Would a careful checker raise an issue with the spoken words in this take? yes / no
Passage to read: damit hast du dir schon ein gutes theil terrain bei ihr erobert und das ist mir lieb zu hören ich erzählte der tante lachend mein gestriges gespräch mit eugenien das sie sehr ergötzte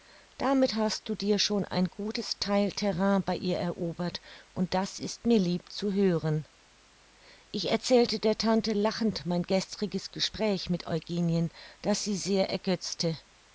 no